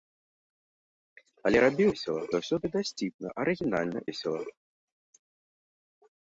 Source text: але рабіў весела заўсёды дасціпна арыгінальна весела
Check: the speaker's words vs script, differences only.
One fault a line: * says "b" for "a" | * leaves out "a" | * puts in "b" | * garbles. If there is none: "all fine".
all fine